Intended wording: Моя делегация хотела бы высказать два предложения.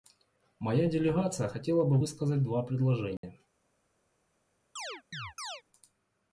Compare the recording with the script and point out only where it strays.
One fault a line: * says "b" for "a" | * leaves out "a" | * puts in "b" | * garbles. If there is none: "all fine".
all fine